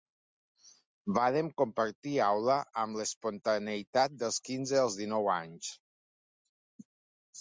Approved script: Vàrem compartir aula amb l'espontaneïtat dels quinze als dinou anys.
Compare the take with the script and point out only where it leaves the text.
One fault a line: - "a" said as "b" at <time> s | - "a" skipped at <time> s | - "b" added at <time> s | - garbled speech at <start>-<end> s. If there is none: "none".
none